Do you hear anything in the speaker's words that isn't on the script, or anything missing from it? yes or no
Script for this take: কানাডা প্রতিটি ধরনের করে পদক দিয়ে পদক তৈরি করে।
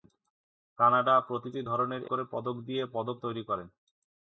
no